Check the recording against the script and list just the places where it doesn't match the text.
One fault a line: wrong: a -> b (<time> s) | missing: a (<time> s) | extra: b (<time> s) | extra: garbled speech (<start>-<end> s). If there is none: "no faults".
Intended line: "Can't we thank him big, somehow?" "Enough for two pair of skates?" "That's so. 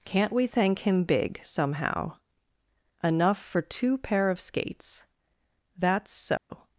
no faults